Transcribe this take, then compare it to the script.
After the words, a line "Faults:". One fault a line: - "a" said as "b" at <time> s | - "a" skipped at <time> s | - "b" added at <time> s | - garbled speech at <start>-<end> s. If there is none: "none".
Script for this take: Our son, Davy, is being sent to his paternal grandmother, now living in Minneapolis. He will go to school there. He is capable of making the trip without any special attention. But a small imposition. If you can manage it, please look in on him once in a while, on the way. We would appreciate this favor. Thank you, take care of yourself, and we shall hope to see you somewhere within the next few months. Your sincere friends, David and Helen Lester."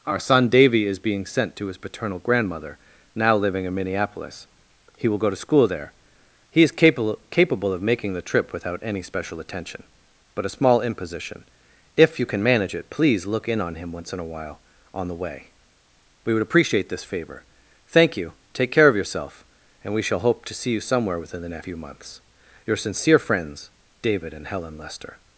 Our son, Davy, is being sent to his paternal grandmother, now living in Minneapolis. He will go to school there. He is capable capable of making the trip without any special attention. But a small imposition. If you can manage it, please look in on him once in a while, on the way. We would appreciate this favor. Thank you, take care of yourself, and we shall hope to see you somewhere within the next few months. Your sincere friends, David and Helen Lester."
Faults:
- "capable" added at 7.3 s